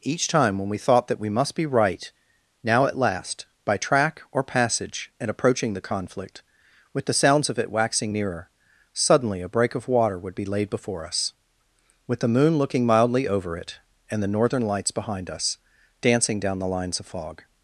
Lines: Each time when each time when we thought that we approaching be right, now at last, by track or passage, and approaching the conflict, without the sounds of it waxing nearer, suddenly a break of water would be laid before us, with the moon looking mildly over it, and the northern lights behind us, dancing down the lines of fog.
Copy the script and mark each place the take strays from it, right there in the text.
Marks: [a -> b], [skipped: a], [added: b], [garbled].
Each time when [skipped: each time when] we thought that we [approaching -> must] be right, now at last, by track or passage, and approaching the conflict, [without -> with] the sounds of it waxing nearer, suddenly a break of water would be laid before us, with the moon looking mildly over it, and the northern lights behind us, dancing down the lines of fog.